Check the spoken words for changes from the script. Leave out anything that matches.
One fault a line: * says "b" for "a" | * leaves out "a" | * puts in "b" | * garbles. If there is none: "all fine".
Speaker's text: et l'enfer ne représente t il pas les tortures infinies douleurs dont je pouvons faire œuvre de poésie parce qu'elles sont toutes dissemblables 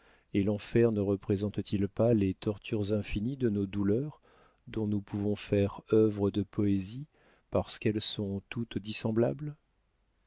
* puts in "de nos"
* says "nous" for "je"